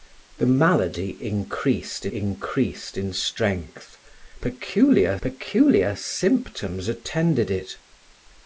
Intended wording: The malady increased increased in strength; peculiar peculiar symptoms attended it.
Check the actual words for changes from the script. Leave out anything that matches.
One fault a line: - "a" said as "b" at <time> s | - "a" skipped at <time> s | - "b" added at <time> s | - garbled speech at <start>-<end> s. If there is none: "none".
none